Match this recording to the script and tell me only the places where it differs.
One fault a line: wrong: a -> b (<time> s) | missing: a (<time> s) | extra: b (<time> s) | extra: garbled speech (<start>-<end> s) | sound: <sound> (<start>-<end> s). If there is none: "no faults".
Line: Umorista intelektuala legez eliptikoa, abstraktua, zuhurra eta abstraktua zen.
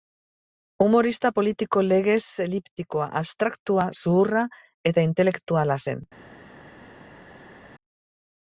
wrong: intelektuala -> politiko (1.4 s)
wrong: abstraktua -> intelektuala (5.1 s)